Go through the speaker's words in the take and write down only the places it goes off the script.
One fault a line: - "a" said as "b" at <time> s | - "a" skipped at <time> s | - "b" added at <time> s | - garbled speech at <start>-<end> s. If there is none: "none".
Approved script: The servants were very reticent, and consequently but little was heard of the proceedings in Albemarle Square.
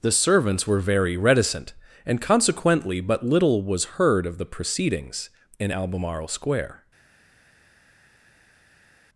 none